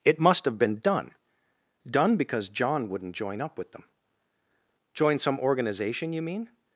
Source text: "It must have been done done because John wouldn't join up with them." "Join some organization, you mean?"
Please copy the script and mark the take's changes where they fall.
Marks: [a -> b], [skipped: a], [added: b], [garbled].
"It must have been done done because John wouldn't join up with them." "Join some organization, you mean?"